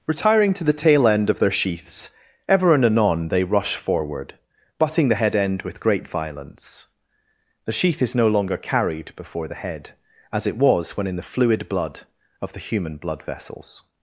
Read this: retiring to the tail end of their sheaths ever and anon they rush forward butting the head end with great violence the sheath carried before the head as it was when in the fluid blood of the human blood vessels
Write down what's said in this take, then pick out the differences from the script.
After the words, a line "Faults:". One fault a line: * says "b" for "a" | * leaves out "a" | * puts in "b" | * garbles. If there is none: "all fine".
retiring to the tail end of their sheaths ever and anon they rush forward butting the head end with great violence the sheath is no longer carried before the head as it was when in the fluid blood of the human blood vessels
Faults:
* puts in "is no longer"